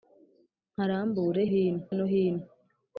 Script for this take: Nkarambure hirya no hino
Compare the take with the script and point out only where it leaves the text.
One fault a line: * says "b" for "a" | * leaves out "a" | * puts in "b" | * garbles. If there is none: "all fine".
* says "hino" for "hirya"